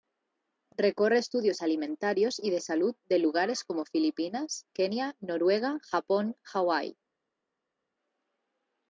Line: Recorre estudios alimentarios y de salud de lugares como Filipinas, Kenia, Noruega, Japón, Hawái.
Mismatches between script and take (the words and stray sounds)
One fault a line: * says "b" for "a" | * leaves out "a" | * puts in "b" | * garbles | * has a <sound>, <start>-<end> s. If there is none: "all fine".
all fine